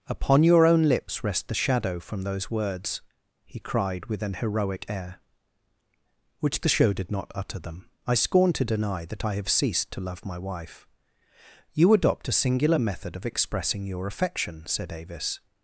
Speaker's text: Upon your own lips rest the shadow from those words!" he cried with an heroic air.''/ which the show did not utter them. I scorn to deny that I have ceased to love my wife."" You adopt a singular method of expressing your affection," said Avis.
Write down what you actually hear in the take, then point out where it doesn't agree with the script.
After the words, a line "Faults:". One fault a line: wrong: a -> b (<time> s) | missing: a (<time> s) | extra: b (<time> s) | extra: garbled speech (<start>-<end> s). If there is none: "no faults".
Upon your own lips rest the shadow from those words!" he cried with an heroic air.''/ which the show did not utter them. I scorn to deny that I have ceased to love my wife."" You adopt a singular method of expressing your affection," said Avis.
Faults:
no faults